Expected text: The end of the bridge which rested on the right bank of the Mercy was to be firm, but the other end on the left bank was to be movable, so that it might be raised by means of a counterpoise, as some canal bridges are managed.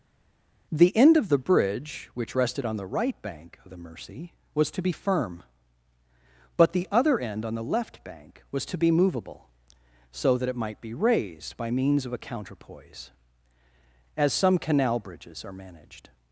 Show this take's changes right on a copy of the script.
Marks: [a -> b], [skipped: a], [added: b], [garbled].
The end of the bridge which rested on the right bank of the Mercy was to be firm, but the other end on the left bank was to be movable, so that it might be raised by means of a counterpoise, as some canal bridges are managed.